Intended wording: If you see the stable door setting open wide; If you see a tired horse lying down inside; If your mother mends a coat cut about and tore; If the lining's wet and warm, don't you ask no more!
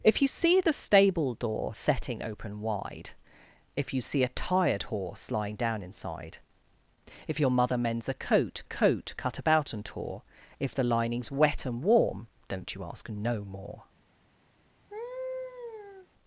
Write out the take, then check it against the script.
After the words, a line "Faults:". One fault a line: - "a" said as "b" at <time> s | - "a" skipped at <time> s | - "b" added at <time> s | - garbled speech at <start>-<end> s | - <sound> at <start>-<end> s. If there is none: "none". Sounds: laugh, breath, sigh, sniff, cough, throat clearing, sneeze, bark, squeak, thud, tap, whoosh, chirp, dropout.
If you see the stable door setting open wide; If you see a tired horse lying down inside; If your mother mends a coat coat cut about and tore; If the lining's wet and warm, don't you ask no more!
Faults:
- "coat" added at 8.6 s
- laugh at 14.9-16.1 s